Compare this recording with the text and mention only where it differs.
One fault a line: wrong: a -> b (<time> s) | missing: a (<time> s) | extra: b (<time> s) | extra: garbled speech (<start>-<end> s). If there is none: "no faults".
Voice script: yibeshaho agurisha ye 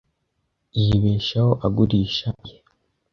no faults